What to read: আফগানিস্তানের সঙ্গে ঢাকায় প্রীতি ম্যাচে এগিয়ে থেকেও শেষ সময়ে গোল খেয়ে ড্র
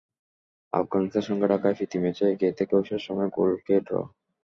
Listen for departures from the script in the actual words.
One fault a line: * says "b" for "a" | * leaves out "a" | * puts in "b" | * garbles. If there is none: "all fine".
all fine